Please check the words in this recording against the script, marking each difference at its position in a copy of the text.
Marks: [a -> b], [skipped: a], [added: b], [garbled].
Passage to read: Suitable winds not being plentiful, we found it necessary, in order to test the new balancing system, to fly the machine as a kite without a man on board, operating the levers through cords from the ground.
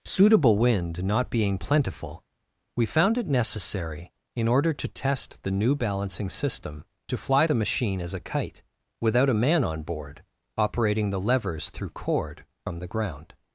Suitable [winds -> wind] not being plentiful, we found it necessary, in order to test the new balancing system, to fly the machine as a kite without a man on board, operating the levers through [cords -> cord] from the ground.